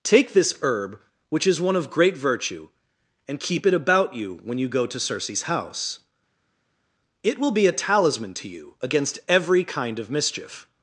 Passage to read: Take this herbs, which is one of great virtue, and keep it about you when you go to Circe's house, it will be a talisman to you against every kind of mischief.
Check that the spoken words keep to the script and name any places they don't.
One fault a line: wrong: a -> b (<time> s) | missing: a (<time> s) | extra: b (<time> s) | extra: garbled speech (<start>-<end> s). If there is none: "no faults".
wrong: herbs -> herb (0.6 s)